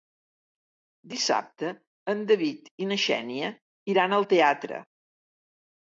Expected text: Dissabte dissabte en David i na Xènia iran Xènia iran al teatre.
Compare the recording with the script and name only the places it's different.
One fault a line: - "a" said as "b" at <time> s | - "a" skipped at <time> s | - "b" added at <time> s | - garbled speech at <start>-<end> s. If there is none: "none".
- "dissabte" skipped at 1.7 s
- "Xènia iran" skipped at 4.2 s